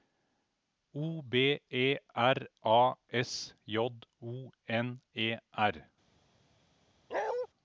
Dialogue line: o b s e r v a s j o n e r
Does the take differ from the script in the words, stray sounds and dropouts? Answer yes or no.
yes